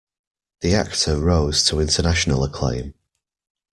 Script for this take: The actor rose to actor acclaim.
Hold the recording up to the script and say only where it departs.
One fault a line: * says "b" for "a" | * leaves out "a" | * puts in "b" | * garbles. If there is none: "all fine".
* says "international" for "actor"